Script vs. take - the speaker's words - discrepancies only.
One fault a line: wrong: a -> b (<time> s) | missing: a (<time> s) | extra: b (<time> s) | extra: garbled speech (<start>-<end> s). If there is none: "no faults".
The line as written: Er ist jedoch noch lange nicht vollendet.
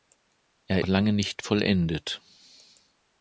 missing: ist jedoch noch (0.8 s)